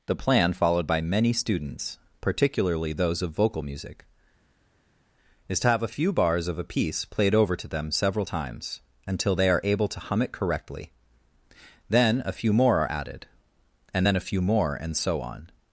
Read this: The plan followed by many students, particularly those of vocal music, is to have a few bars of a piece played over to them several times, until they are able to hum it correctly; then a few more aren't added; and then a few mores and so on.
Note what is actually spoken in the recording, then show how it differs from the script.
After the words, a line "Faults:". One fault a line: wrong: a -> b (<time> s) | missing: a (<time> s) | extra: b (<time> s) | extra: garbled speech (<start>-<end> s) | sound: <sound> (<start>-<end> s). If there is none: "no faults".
The plan followed by many students, particularly those of vocal music, is to have a few bars of a piece played over to them several times, until they are able to hum it correctly; then a few more are added; and then a few more and so on.
Faults:
wrong: aren't -> are (12.8 s)
wrong: mores -> more (14.4 s)